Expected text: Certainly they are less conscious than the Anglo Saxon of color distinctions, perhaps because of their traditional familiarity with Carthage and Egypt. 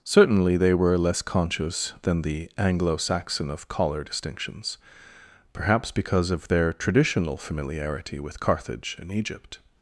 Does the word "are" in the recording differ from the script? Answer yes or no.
yes